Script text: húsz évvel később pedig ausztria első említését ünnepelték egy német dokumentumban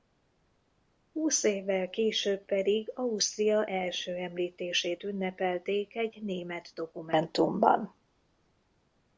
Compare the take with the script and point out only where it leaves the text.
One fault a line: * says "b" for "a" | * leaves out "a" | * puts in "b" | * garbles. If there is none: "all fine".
all fine